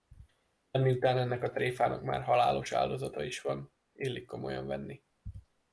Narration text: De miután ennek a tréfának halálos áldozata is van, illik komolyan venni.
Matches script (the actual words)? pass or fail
fail